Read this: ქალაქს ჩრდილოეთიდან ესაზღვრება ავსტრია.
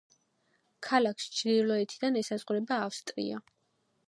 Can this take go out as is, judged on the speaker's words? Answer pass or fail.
pass